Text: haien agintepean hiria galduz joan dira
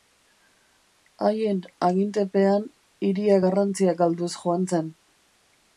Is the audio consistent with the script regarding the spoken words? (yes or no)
no